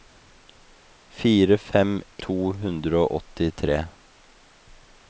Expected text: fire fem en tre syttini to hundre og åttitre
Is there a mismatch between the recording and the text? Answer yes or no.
yes